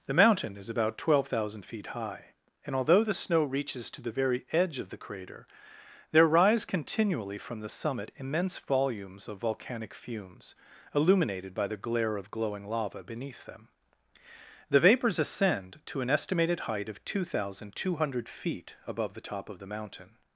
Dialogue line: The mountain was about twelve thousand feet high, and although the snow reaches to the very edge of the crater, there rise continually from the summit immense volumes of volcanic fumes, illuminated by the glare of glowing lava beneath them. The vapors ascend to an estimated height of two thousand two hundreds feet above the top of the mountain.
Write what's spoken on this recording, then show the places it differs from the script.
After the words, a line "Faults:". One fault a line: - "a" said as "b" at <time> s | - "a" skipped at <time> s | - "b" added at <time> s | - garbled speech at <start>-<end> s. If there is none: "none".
The mountain is about twelve thousand feet high, and although the snow reaches to the very edge of the crater, there rise continually from the summit immense volumes of volcanic fumes, illuminated by the glare of glowing lava beneath them. The vapors ascend to an estimated height of two thousand two hundred feet above the top of the mountain.
Faults:
- "was" said as "is" at 0.6 s
- "hundreds" said as "hundred" at 18.0 s